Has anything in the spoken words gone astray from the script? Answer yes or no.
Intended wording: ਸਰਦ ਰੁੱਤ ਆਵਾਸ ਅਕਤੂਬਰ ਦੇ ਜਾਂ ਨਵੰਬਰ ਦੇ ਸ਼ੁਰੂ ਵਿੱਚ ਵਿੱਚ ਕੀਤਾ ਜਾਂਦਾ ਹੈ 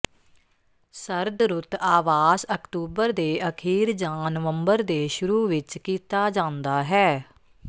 yes